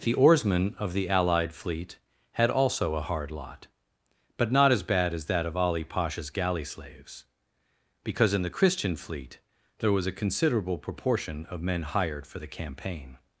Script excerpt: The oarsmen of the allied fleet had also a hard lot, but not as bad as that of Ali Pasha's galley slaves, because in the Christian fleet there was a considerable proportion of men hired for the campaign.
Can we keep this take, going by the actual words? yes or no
yes